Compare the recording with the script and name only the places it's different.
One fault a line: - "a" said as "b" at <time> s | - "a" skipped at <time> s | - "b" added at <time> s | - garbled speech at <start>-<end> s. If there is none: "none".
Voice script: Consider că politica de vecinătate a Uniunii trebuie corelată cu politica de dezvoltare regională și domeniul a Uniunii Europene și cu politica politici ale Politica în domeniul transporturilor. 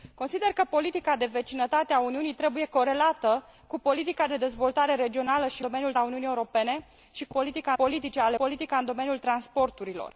none